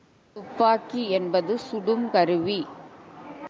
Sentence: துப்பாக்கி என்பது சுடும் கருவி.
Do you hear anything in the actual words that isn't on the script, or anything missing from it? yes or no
no